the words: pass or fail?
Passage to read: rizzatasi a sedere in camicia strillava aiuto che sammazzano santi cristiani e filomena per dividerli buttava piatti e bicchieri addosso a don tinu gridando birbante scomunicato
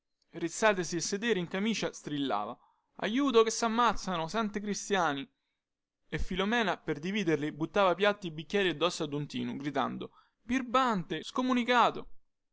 pass